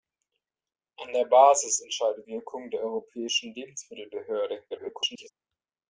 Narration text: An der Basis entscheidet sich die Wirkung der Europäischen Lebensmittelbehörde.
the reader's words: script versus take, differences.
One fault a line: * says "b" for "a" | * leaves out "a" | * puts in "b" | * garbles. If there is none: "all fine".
* leaves out "sich die"
* garbles